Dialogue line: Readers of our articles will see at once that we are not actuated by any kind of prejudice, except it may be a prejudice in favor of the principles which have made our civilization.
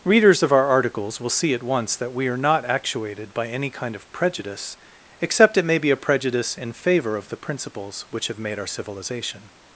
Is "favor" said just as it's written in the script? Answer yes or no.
yes